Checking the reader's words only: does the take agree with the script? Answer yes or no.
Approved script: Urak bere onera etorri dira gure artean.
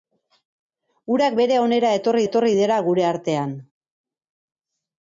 no